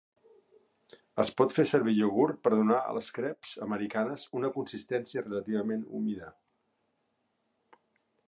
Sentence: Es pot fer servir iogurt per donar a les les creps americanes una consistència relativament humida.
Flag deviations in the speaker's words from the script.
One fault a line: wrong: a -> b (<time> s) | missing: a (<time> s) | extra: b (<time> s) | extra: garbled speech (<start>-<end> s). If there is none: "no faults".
missing: les (3.1 s)